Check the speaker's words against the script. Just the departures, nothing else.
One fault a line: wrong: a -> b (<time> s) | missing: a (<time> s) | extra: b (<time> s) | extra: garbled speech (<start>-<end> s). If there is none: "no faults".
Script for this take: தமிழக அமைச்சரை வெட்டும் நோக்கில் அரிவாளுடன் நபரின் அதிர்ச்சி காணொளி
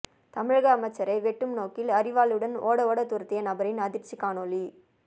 extra: ஓட ஓட துரத்திய (2.6 s)